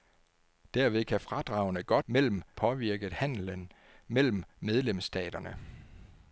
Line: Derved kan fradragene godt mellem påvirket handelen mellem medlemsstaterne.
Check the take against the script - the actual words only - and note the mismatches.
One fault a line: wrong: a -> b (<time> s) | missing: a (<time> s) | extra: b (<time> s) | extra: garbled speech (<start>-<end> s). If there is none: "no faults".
no faults